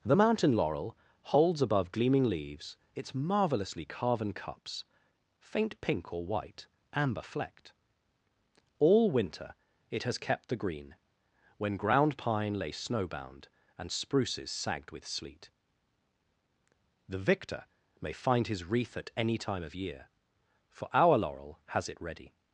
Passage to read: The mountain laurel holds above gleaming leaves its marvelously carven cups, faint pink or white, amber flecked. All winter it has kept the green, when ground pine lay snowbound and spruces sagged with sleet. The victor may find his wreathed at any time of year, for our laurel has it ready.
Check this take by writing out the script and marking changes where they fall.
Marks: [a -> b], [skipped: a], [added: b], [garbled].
The mountain laurel holds above gleaming leaves its marvelously carven cups, faint pink or white, amber flecked. All winter it has kept the green, when ground pine lay snowbound and spruces sagged with sleet. The victor may find his [wreathed -> wreath] at any time of year, for our laurel has it ready.